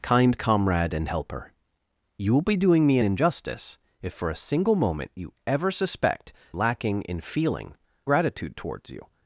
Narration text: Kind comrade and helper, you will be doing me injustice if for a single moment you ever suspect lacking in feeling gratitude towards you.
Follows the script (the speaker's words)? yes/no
yes